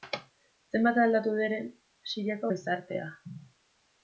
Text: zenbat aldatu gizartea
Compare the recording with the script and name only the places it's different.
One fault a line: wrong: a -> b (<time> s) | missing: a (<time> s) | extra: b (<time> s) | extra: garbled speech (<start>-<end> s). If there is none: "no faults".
extra: den siriako (1.4 s)